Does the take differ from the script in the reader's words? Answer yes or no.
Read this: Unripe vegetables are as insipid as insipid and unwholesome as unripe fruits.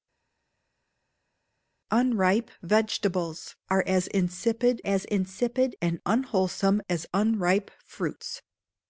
no